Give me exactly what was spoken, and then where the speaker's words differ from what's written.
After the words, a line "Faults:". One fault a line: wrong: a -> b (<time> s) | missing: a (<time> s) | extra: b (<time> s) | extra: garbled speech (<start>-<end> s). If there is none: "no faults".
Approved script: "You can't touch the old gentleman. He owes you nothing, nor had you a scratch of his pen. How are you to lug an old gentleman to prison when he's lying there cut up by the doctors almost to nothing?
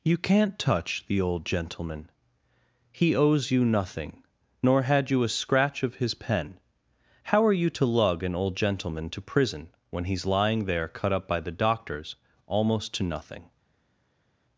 "You can't touch the old gentleman. He owes you nothing, nor had you a scratch of his pen. How are you to lug an old gentleman to prison when he's lying there cut up by the doctors almost to nothing?
Faults:
no faults